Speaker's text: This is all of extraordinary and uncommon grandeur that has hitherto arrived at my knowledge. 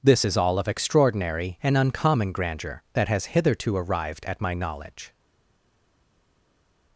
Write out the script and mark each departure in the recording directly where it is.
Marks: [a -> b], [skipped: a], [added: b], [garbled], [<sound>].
This is all of extraordinary and uncommon grandeur that has hitherto arrived at my knowledge.